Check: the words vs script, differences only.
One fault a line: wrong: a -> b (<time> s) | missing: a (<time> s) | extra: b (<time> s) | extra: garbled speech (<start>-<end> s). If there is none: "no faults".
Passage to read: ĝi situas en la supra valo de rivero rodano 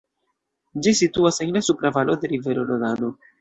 no faults